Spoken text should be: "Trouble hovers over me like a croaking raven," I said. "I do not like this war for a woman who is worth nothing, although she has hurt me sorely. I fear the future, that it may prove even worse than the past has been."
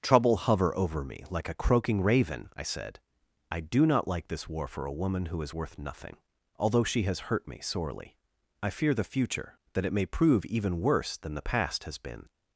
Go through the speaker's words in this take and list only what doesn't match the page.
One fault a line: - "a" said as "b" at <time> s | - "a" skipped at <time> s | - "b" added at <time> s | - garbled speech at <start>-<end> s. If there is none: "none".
- "hovers" said as "hover" at 0.4 s